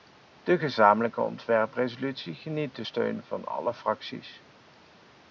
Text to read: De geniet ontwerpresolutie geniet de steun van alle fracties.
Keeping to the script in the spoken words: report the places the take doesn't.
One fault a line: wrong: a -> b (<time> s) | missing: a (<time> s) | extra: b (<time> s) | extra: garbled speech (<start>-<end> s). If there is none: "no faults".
wrong: geniet -> gezamenlijke (0.6 s)